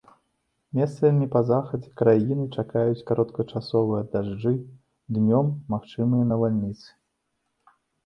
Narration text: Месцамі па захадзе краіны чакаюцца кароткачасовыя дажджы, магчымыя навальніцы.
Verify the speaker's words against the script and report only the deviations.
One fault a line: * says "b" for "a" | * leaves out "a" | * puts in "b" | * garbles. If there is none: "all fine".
* puts in "днём"